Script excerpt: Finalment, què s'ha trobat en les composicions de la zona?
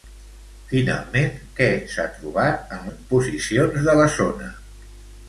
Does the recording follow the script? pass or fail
fail